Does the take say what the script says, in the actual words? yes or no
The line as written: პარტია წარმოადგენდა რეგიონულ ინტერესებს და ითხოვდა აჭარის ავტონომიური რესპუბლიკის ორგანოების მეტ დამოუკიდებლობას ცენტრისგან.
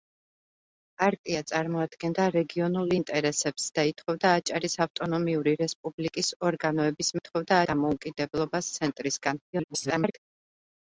no